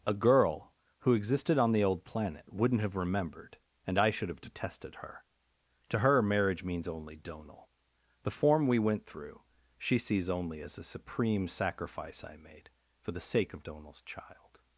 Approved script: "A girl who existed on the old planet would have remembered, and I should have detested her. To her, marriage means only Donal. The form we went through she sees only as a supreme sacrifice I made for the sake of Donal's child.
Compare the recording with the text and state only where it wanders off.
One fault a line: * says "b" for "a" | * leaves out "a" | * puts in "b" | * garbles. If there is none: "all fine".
* says "wouldn't" for "would"